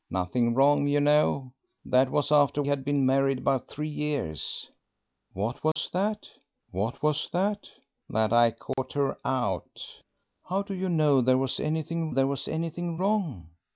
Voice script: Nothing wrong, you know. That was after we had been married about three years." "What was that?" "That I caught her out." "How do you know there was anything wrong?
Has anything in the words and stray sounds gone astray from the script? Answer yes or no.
yes